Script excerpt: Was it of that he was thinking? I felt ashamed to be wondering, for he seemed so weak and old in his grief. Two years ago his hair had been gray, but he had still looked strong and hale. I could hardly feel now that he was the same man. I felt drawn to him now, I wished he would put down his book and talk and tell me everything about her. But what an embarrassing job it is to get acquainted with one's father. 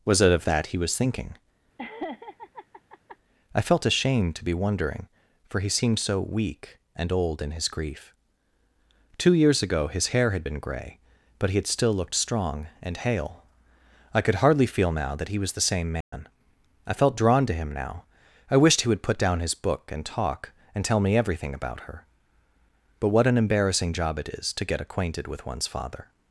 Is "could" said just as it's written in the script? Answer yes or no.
yes